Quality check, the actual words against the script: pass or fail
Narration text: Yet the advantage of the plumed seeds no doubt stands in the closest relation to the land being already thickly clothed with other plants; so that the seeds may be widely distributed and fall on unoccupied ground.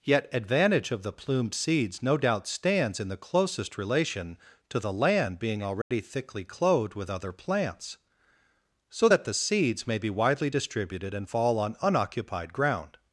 fail